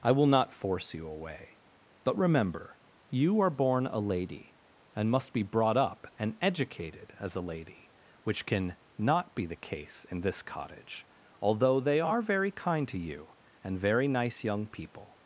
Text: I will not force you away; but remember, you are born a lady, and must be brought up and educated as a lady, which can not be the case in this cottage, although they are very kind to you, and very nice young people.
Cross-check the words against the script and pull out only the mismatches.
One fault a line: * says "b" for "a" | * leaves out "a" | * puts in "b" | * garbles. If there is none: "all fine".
all fine